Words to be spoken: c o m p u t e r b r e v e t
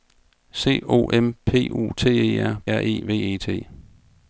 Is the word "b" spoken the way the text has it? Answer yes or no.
no